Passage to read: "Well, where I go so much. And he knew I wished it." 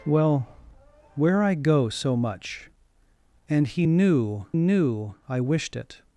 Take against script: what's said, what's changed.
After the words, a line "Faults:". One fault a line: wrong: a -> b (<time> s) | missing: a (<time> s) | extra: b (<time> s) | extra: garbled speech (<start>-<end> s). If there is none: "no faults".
"Well, where I go so much. And he knew knew I wished it."
Faults:
extra: knew (4.5 s)